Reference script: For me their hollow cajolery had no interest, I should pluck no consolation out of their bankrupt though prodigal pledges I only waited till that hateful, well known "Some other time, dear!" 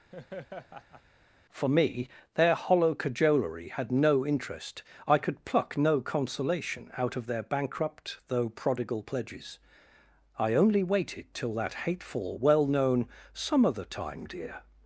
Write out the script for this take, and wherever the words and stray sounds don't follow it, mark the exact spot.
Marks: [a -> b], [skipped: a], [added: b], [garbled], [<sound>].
[laugh] For me their hollow cajolery had no interest, I [should -> could] pluck no consolation out of their bankrupt though prodigal pledges I only waited till that hateful, well known "Some other time, dear!"